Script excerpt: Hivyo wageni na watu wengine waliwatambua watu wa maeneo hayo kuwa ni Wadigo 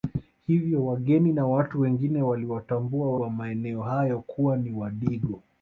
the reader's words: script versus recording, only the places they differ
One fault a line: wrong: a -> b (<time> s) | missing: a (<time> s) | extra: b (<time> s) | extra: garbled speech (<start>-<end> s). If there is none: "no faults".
missing: watu (3.1 s)